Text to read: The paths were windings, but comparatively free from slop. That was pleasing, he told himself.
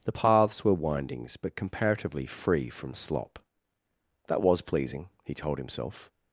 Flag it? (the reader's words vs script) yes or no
no